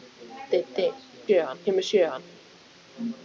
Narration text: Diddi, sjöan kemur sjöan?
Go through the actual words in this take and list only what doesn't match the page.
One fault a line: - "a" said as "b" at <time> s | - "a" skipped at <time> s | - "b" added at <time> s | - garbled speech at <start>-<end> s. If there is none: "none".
none